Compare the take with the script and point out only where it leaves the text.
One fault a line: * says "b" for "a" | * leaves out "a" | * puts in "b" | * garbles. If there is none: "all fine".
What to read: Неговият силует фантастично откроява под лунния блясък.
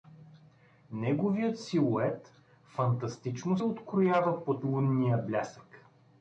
all fine